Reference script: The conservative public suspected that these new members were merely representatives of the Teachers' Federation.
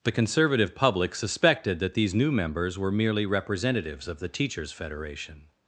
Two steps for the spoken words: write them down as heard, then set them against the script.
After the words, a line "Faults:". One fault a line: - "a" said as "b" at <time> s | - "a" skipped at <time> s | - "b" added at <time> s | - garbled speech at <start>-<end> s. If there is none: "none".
The conservative public suspected that these new members were merely representatives of the Teachers' Federation.
Faults:
none